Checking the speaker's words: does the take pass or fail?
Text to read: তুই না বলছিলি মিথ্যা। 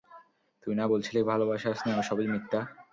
fail